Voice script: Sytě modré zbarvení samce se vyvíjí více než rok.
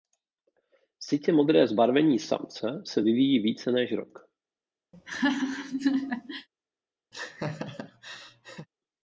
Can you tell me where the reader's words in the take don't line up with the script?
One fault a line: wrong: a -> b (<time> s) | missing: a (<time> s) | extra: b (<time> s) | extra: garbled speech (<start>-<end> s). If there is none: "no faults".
no faults